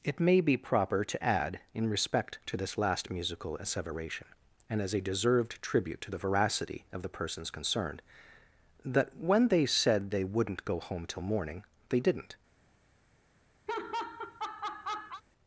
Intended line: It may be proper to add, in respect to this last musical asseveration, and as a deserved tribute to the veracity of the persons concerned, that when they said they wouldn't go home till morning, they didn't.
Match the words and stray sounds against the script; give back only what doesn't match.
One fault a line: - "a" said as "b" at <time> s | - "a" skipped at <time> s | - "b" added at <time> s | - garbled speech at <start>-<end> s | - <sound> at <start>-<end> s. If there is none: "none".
- laugh at 13.7-15.2 s